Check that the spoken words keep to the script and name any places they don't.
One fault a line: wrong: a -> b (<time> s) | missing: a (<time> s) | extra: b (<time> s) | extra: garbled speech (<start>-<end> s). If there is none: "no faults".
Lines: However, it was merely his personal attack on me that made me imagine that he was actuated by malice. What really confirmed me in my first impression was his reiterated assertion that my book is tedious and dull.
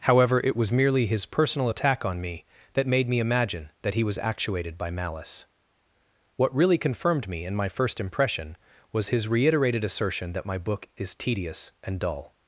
no faults